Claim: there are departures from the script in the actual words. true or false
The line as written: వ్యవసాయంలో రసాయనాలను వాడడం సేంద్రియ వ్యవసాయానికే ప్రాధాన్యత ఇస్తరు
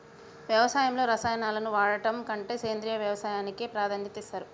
true